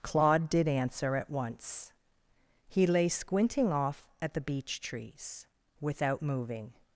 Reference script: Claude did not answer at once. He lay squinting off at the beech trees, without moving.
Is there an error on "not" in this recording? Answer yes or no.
yes